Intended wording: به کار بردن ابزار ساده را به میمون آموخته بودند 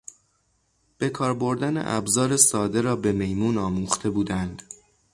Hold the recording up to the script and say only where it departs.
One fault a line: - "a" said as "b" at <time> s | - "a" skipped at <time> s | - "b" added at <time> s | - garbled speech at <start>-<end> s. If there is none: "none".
none